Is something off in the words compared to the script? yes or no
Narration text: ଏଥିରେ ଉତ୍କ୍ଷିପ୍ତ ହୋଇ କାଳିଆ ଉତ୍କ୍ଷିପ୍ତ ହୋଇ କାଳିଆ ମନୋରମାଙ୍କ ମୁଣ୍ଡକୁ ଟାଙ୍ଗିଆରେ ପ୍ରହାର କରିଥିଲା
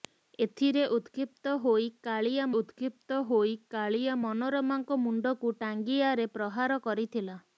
no